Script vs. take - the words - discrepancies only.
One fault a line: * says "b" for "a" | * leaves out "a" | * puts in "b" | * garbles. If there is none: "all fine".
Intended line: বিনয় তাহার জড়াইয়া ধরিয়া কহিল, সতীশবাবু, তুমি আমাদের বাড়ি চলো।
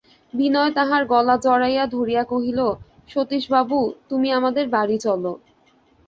* puts in "গলা"